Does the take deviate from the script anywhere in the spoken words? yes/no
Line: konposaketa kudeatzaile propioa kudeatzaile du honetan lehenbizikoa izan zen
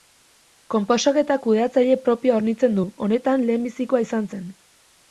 yes